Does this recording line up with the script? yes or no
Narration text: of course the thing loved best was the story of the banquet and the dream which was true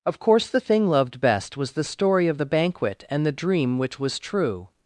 yes